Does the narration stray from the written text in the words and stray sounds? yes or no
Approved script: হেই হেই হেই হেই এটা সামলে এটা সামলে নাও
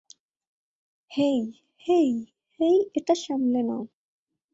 yes